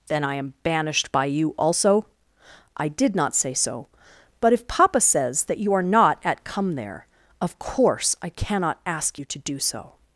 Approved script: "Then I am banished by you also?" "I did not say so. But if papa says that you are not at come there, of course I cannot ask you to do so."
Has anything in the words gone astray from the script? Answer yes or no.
no